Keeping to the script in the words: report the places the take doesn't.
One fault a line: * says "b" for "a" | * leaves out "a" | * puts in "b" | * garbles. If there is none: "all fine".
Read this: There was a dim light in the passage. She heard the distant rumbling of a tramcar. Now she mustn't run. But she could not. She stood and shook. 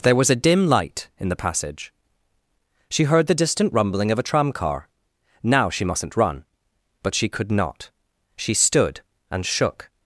all fine